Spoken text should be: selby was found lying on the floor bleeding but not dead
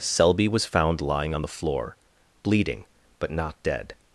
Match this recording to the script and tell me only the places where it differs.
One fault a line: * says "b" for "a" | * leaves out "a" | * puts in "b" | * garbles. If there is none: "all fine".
all fine